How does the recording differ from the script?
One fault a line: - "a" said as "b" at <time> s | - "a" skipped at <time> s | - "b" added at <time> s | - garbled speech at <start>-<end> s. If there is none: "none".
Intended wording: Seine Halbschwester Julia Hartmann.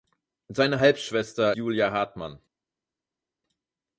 none